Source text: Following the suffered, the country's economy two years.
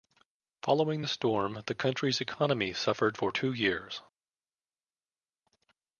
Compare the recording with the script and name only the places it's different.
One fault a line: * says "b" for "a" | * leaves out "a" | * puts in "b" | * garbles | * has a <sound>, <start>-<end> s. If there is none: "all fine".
* says "storm" for "suffered"
* puts in "suffered for"